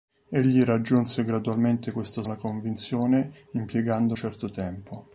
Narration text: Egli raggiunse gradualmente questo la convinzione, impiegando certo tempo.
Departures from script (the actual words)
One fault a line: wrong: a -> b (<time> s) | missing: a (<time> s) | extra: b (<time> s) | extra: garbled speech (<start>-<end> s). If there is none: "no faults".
no faults